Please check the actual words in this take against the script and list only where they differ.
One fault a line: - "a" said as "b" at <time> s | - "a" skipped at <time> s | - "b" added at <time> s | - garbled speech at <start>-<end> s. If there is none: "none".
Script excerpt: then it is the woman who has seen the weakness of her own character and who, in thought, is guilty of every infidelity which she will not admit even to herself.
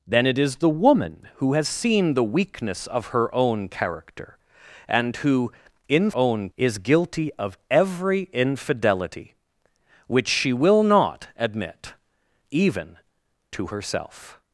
- "thought" said as "own" at 6.1 s